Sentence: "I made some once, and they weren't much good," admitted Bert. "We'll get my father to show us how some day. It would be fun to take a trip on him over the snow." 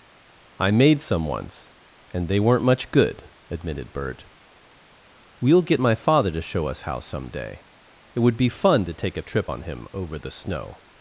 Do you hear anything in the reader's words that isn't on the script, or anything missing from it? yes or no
no